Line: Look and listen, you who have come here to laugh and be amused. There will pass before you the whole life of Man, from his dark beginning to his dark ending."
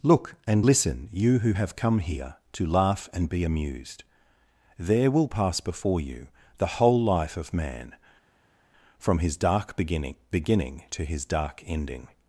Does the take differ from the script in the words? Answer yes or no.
yes